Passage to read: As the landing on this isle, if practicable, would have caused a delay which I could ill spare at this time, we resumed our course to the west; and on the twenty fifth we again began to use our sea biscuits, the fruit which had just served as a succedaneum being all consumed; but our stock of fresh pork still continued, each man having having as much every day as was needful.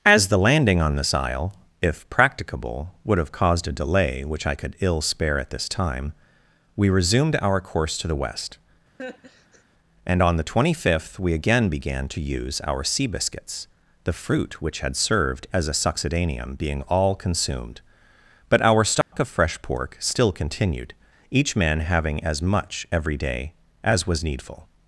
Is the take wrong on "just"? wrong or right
wrong